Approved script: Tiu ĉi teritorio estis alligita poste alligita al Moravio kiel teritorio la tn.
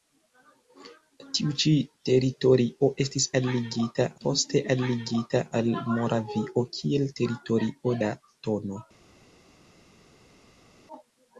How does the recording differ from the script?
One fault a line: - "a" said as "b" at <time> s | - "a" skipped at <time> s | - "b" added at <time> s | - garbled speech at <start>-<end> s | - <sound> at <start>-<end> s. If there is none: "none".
none